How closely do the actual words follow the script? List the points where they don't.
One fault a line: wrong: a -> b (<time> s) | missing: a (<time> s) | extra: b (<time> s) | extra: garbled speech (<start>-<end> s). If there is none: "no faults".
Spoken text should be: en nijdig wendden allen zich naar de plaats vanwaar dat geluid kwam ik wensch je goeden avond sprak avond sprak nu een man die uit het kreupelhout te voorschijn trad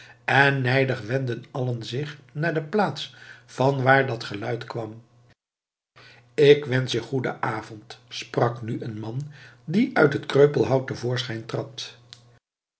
missing: avond sprak (8.6 s)